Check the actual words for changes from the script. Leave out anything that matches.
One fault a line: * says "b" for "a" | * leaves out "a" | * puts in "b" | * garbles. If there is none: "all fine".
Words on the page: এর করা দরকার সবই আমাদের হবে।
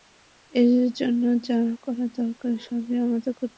* puts in "জন্য যা"
* puts in "করতে"